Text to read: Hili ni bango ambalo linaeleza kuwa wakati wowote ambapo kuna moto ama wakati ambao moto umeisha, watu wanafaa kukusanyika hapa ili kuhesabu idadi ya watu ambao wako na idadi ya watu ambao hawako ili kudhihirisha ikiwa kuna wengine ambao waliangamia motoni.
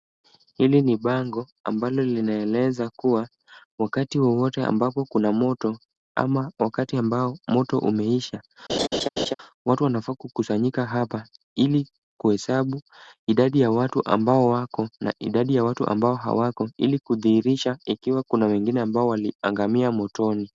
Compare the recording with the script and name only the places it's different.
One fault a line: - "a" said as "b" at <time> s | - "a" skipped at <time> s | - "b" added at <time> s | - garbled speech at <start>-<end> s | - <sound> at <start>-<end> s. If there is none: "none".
- laugh at 8.7-9.3 s